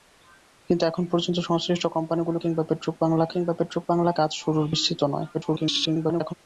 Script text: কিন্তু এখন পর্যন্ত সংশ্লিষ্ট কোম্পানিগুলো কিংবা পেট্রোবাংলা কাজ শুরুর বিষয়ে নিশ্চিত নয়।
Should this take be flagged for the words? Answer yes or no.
yes